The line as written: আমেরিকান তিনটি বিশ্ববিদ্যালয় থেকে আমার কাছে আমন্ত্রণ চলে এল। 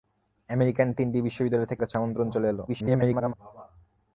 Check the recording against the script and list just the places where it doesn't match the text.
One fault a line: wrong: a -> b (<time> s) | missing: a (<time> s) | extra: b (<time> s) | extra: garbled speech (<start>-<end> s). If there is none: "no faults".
missing: আমার (1.8 s)
extra: garbled speech (2.7-3.3 s)